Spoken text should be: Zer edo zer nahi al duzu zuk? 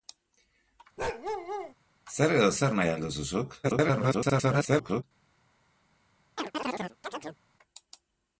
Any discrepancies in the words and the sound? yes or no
yes